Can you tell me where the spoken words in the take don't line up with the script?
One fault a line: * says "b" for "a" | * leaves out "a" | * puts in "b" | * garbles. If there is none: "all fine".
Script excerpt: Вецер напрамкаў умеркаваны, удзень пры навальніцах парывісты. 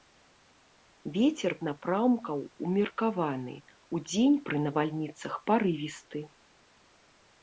all fine